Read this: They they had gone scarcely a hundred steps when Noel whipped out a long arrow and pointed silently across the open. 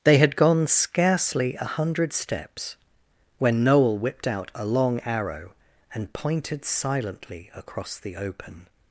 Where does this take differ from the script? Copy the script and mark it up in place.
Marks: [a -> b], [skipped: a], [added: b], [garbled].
They [skipped: they] had gone scarcely a hundred steps when Noel whipped out a long arrow and pointed silently across the open.